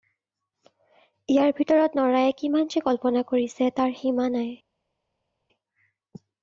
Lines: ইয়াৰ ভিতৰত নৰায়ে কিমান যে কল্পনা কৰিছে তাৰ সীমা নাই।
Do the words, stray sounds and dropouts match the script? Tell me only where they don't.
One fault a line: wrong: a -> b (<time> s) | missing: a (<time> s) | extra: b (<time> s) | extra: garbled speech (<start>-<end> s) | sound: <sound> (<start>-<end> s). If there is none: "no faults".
no faults